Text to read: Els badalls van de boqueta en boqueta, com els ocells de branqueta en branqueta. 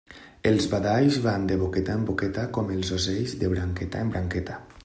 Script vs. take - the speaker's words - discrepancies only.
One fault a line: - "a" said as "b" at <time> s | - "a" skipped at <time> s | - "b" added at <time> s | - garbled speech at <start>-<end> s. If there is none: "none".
none